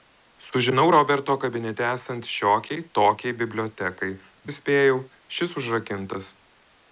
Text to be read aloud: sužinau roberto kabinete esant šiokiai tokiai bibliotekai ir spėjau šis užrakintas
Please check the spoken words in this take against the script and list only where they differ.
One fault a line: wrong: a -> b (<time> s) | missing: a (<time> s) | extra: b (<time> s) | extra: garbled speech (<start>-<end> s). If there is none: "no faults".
no faults